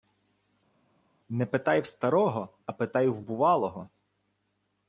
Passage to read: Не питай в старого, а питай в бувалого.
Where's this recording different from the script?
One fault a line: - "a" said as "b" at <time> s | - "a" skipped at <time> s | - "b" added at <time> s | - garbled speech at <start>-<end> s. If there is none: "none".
none